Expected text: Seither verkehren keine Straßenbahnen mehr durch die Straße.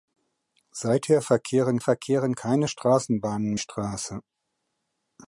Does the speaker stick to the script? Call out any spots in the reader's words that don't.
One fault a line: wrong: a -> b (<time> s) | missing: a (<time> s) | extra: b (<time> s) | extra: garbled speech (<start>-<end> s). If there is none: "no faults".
extra: verkehren (1.8 s)
missing: mehr durch die (3.5 s)